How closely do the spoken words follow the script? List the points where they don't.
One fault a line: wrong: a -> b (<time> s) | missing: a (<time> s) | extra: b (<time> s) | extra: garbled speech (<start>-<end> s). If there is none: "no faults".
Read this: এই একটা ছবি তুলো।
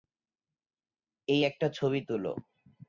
no faults